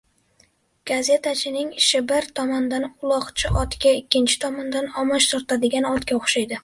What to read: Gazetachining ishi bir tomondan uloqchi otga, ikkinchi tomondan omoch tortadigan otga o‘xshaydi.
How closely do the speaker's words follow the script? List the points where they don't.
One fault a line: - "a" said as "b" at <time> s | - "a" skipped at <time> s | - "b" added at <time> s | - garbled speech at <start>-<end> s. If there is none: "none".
none